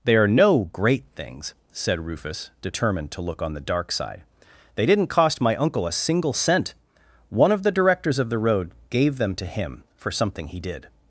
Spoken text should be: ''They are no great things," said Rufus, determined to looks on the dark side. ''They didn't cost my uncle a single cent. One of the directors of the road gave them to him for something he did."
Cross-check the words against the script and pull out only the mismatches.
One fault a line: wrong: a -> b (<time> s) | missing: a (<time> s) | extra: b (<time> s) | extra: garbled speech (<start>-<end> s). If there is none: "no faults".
wrong: looks -> look (3.2 s)